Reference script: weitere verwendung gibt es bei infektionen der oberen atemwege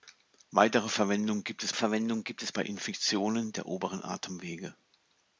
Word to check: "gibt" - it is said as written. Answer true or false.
true